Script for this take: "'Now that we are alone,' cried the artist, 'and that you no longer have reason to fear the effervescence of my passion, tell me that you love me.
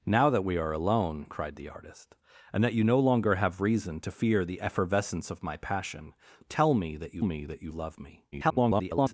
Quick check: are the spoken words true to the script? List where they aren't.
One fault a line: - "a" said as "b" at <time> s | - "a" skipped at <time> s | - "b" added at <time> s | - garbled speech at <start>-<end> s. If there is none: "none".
- "me that you" added at 7.2 s
- garbled speech at 8.3-9.1 s